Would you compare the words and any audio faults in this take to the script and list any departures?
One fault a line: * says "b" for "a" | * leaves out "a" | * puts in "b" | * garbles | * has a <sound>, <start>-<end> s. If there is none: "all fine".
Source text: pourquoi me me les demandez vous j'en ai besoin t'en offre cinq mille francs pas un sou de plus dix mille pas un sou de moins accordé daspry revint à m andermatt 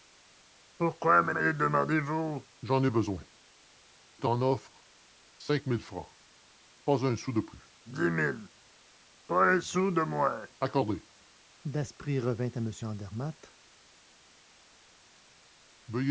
all fine